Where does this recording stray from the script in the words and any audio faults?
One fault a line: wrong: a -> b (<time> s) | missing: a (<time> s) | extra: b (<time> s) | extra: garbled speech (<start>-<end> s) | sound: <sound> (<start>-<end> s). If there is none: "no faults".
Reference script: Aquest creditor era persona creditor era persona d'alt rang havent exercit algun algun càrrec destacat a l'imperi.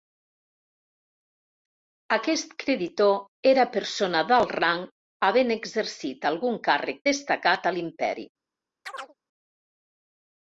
missing: creditor era persona (4.2 s)
missing: algun (6.6 s)
sound: chirp (8.9-9.1 s)